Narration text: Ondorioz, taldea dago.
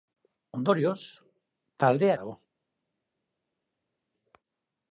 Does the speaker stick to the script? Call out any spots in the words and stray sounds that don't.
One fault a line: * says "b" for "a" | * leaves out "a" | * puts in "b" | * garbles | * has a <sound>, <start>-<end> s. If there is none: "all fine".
all fine